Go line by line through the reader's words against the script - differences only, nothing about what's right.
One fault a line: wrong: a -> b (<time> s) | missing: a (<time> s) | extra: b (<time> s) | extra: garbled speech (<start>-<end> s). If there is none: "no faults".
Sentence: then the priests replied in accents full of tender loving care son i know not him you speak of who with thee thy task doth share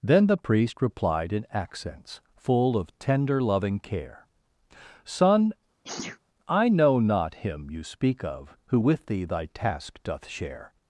wrong: priests -> priest (0.4 s)